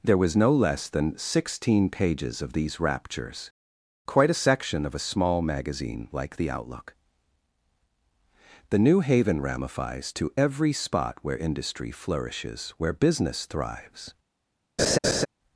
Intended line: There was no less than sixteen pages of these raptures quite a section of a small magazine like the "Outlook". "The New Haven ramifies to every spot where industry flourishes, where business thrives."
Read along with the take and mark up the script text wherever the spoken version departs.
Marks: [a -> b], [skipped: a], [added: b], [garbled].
There was no less than sixteen pages of these raptures quite a section of a small magazine like the "Outlook". "The New Haven ramifies to every spot where industry flourishes, where business thrives."